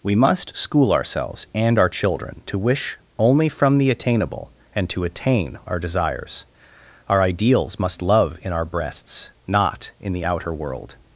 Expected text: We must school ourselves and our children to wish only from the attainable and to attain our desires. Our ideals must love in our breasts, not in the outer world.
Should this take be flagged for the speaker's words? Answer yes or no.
no